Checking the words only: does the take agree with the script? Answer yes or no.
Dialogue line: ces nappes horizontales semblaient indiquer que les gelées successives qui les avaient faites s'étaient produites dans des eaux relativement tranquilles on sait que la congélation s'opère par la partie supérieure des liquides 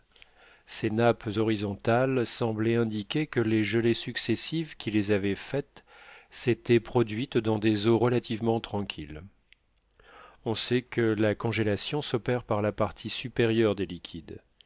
yes